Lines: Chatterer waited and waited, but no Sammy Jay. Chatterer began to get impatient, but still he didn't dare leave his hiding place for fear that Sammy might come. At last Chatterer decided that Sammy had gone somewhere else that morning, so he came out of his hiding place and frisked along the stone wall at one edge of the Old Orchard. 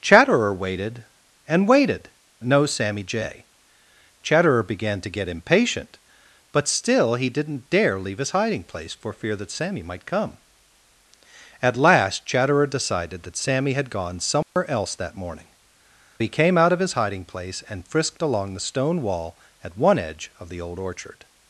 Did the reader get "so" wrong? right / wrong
wrong